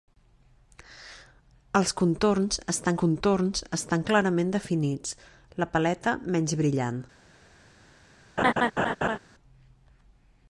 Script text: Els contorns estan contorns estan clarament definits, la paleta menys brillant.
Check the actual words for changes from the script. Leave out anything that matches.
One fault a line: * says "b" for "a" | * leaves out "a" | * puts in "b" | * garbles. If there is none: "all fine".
all fine